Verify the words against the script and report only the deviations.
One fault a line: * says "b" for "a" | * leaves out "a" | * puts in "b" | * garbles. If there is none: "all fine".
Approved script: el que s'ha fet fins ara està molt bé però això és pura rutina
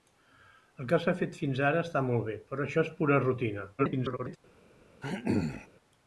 * garbles